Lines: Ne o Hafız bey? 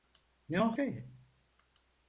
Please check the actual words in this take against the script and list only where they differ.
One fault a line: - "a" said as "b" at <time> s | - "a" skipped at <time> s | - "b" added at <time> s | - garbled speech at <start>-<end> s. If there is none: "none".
- "Hafız" skipped at 0.8 s